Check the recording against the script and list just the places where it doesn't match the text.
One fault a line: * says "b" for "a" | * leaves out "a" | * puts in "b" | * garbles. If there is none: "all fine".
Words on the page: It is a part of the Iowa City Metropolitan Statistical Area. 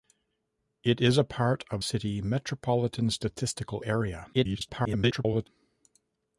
* leaves out "the Iowa"
* garbles